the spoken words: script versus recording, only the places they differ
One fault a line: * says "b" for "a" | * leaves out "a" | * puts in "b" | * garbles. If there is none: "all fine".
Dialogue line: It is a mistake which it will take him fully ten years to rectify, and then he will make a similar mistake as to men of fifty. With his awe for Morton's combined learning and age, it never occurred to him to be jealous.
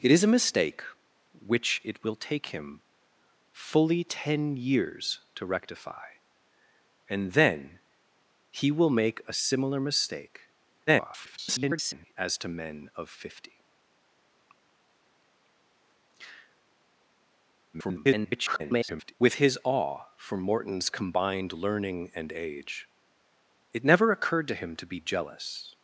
* garbles
* garbles